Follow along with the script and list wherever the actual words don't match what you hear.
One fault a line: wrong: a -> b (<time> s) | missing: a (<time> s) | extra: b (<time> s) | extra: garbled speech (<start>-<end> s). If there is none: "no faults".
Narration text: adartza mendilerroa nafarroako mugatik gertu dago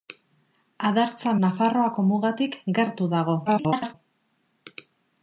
missing: mendilerroa (1.3 s)
extra: garbled speech (3.5-3.9 s)